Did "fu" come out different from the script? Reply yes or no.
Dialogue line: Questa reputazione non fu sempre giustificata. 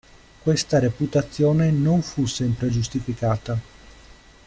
no